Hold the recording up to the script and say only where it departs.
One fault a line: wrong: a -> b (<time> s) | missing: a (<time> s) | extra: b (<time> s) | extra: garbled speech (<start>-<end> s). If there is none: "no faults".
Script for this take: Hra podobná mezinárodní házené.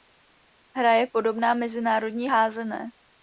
extra: je (0.9 s)